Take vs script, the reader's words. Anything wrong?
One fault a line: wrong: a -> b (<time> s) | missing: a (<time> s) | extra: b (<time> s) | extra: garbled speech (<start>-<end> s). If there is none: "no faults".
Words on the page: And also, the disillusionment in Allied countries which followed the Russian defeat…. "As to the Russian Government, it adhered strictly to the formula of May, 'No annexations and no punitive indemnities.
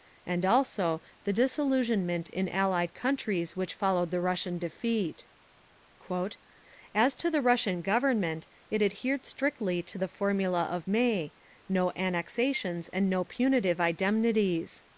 no faults